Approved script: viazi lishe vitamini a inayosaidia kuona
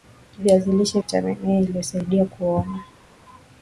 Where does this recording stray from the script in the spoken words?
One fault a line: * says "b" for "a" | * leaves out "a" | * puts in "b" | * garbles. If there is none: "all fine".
all fine